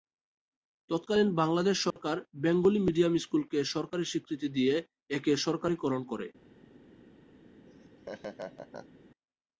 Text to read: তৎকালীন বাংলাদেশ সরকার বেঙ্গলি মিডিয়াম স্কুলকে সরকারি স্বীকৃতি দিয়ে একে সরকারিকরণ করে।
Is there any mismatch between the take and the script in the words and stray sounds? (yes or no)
yes